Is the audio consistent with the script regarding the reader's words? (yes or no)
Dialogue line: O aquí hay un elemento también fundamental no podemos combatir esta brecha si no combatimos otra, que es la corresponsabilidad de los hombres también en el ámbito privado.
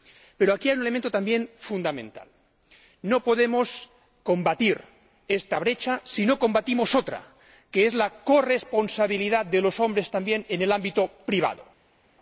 no